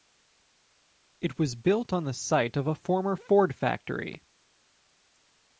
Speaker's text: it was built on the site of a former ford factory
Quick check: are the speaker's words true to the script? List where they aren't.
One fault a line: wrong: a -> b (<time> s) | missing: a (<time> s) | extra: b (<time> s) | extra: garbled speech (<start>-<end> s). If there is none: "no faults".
no faults